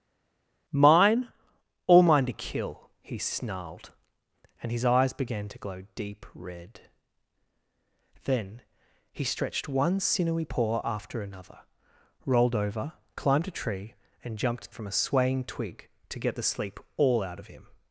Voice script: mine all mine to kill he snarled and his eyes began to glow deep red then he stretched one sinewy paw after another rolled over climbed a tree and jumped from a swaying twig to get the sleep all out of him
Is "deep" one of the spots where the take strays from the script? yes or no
no